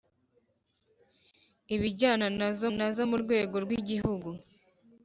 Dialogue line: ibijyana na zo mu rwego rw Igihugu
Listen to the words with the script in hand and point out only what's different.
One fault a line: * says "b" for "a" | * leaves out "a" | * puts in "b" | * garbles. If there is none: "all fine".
* puts in "na zo"